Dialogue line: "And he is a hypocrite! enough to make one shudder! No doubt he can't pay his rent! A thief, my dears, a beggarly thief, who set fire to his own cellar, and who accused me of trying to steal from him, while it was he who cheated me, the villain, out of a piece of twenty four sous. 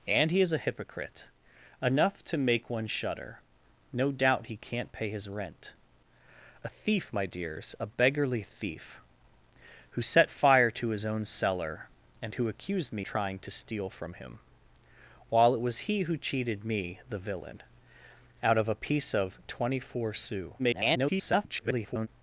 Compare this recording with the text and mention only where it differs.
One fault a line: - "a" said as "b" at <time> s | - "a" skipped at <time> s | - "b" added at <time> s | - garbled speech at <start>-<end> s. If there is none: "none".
- "of" skipped at 13.1 s
- garbled speech at 20.6-22.1 s